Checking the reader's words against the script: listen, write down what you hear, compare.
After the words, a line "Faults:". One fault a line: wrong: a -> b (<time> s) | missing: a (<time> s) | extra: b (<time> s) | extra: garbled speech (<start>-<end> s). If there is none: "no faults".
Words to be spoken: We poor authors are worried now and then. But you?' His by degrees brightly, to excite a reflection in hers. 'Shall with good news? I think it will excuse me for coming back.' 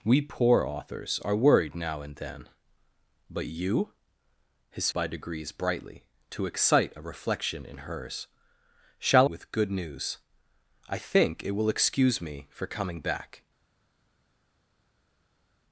We poor authors are worried now and then. But you?' His by degrees brightly, to excite a reflection in hers. 'Shall with good news? I think it will excuse me for coming back.'
Faults:
no faults